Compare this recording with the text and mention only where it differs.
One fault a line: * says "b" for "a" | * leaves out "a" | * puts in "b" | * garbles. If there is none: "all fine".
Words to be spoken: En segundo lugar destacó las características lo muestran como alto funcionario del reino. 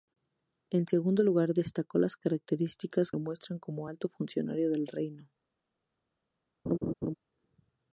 all fine